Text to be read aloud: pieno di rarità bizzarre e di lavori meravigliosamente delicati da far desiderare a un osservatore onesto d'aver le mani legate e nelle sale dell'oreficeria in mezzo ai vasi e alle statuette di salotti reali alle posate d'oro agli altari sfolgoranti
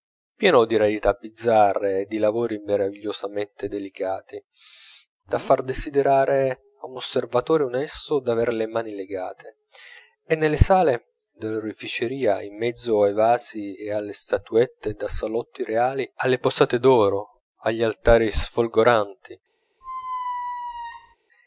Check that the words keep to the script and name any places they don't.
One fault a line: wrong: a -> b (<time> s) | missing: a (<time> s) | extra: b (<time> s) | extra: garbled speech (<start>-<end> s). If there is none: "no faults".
wrong: di -> da (14.9 s)